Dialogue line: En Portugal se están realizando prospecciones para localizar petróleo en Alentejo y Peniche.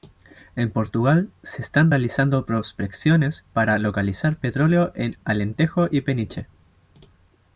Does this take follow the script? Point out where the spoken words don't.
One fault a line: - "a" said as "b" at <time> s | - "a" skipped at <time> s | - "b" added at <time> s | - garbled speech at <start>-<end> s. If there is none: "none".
none